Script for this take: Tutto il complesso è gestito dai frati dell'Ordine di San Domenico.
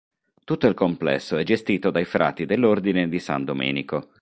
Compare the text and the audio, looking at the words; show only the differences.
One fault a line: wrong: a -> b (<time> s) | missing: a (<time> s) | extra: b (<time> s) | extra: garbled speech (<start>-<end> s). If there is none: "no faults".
no faults